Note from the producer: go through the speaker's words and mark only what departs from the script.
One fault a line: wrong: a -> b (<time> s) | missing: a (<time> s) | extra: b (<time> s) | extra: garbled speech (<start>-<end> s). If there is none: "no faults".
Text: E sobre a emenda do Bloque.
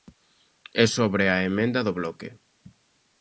no faults